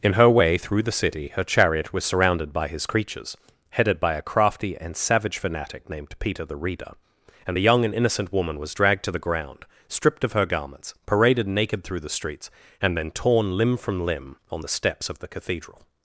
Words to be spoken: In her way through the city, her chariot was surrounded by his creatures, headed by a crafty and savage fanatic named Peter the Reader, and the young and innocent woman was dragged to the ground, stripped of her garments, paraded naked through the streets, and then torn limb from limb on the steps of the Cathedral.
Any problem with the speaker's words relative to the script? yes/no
no